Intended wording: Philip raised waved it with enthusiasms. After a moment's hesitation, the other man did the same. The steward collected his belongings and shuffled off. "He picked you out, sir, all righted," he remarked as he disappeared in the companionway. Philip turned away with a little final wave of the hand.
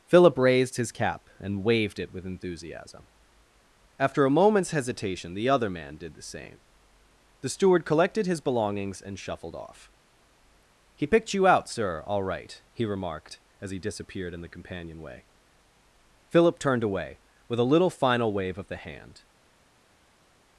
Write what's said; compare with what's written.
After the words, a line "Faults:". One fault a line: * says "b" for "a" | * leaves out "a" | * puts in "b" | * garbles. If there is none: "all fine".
Philip raised his cap and waved it with enthusiasm. After a moment's hesitation, the other man did the same. The steward collected his belongings and shuffled off. "He picked you out, sir, all right," he remarked as he disappeared in the companionway. Philip turned away with a little final wave of the hand.
Faults:
* puts in "his cap and"
* says "enthusiasm" for "enthusiasms"
* says "right" for "righted"